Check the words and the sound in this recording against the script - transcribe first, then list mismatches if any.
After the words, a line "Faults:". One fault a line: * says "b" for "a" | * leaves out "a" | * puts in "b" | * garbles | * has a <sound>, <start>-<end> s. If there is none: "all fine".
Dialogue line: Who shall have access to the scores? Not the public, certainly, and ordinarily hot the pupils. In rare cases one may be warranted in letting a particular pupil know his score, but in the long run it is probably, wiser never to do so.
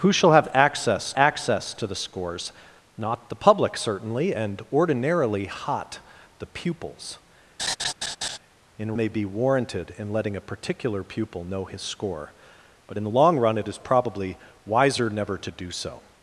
Who shall have access access to the scores? Not the public, certainly, and ordinarily hot the pupils. In may be warranted in letting a particular pupil know his score, but in the long run it is probably, wiser never to do so.
Faults:
* puts in "access"
* has a laugh, 7.6-8.4 s
* leaves out "rare cases one"